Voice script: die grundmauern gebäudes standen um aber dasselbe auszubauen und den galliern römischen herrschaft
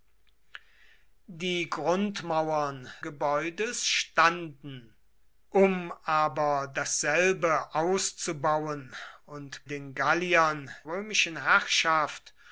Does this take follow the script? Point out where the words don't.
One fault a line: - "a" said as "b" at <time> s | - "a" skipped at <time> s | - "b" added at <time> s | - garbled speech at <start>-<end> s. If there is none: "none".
none